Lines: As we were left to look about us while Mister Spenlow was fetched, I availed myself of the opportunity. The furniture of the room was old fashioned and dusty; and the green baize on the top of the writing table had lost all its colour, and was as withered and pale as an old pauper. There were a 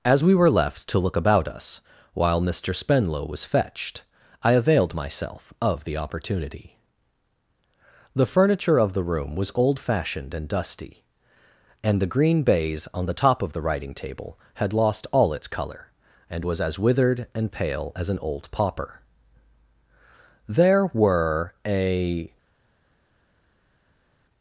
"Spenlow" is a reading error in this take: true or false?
false